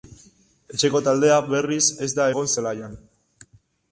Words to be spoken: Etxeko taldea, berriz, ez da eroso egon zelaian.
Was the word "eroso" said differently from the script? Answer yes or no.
yes